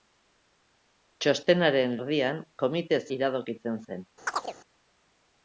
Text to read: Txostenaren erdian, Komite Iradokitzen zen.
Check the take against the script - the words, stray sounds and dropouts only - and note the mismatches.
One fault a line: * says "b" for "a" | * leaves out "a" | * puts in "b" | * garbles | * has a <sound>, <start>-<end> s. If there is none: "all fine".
* has a chirp, 4.3-4.6 s